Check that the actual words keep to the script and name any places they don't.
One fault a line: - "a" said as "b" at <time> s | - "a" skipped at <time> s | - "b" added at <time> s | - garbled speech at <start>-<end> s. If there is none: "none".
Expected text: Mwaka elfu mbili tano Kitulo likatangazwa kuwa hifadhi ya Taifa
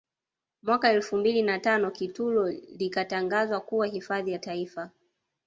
- "na" added at 1.4 s